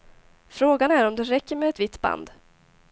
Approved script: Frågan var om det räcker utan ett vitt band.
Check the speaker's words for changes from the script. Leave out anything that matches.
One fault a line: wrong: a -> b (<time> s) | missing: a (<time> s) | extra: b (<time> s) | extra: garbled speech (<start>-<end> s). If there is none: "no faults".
wrong: var -> är (0.9 s)
wrong: utan -> med (1.6 s)